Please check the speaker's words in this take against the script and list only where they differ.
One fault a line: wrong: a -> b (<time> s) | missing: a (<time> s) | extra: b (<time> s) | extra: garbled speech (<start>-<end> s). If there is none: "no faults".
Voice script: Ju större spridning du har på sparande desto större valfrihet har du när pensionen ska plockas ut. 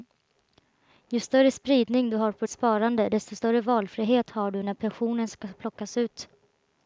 no faults